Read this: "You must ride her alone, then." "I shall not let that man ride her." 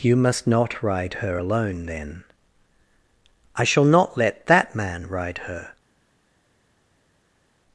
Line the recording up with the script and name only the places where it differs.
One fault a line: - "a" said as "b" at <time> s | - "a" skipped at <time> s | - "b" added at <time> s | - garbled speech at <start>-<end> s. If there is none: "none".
- "not" added at 0.5 s